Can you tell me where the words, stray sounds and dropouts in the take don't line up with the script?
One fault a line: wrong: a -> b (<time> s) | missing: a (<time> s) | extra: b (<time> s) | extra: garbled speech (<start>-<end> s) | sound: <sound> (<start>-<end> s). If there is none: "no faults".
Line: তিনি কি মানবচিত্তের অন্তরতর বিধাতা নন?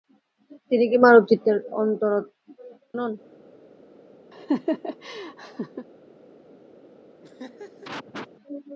missing: অন্তরতর বিধাতা (1.6 s)
sound: laugh (4.3-5.9 s)
sound: laugh (7.2-8.3 s)